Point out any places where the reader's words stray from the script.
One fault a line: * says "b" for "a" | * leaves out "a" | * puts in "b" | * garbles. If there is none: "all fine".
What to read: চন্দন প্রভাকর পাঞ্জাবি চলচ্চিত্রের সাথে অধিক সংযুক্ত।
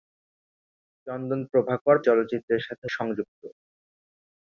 * leaves out "পাঞ্জাবি"
* leaves out "অধিক"